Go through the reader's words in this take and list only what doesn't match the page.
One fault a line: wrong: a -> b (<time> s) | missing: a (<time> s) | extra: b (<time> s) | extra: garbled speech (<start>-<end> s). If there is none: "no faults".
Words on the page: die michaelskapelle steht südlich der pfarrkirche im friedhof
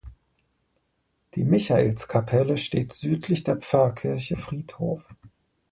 missing: im (4.4 s)